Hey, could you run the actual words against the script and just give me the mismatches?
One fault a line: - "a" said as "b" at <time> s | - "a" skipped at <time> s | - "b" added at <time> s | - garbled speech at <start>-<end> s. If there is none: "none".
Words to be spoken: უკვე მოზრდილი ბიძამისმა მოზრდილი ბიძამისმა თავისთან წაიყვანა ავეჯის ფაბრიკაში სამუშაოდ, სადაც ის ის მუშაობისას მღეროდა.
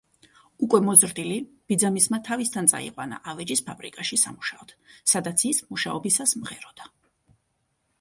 - "მოზრდილი ბიძამისმა" skipped at 2.2 s
- "ის" skipped at 5.6 s